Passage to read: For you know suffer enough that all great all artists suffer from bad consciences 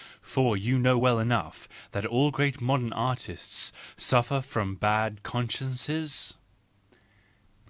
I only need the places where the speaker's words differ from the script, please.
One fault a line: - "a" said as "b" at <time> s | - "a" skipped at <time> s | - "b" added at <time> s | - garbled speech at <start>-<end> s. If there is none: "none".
- "suffer" said as "well" at 0.9 s
- "all" said as "modern" at 2.6 s